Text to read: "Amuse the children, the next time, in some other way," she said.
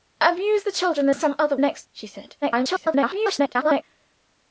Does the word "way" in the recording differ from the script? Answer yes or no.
yes